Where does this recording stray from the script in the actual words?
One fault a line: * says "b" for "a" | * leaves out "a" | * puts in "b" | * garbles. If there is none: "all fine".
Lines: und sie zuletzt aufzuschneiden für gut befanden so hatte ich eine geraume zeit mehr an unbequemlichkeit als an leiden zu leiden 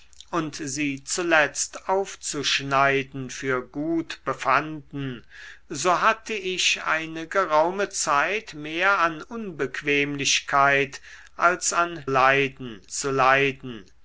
all fine